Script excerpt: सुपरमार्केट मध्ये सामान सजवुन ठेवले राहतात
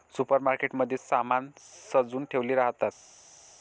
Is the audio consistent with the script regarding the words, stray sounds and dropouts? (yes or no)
yes